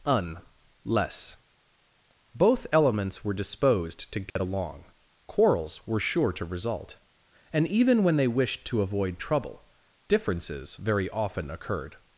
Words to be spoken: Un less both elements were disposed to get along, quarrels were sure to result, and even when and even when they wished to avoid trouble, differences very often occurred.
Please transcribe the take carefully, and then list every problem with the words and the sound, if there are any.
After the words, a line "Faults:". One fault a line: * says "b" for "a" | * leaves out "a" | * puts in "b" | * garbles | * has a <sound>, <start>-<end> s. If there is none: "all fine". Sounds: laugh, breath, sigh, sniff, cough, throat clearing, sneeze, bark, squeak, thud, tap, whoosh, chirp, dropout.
Un less both elements were disposed to get along, quarrels were sure to result, and even when they wished to avoid trouble, differences very often occurred.
Faults:
* has a dropout, 4.3-4.4 s
* leaves out "and even when"